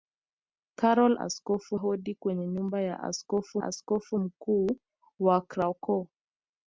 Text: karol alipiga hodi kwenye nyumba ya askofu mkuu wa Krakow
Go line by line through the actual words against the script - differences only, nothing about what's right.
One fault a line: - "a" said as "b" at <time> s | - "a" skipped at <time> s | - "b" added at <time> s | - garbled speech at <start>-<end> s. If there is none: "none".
- "alipiga" said as "askofu" at 1.2 s
- "askofu" added at 3.6 s